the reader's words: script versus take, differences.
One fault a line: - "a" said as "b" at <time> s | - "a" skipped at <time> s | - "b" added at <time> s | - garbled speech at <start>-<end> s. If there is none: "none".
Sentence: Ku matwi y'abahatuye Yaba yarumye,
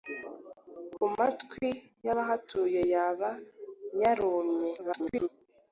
- garbled speech at 4.8-5.3 s